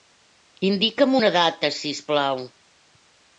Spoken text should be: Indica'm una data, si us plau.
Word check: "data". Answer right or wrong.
right